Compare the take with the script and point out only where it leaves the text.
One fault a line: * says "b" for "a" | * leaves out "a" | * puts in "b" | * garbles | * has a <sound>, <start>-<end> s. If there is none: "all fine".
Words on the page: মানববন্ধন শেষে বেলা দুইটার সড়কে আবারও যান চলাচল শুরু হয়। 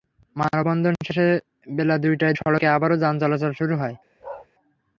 * has a bark, 4.2-4.5 s